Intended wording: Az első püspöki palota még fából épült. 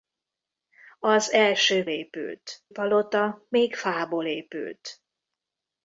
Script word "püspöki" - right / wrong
wrong